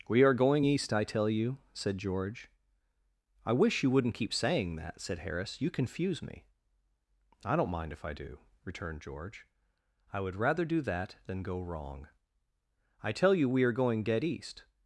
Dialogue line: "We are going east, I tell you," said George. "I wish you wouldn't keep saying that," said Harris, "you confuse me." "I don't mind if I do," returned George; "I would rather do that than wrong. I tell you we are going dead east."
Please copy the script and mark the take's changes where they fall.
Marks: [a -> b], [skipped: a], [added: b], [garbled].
"We are going east, I tell you," said George. "I wish you wouldn't keep saying that," said Harris, "you confuse me." "I don't mind if I do," returned George; "I would rather do that than [added: go] wrong. I tell you we are going dead east."